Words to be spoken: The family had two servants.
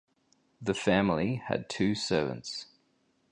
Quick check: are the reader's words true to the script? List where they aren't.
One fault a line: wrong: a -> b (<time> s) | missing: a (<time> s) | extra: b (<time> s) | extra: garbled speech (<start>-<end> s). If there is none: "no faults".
no faults